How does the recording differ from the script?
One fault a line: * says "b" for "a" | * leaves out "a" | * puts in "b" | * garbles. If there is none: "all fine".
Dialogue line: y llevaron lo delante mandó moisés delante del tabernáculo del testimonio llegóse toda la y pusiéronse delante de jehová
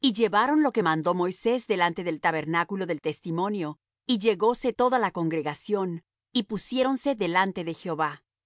* says "que" for "delante"
* puts in "y"
* puts in "congregación"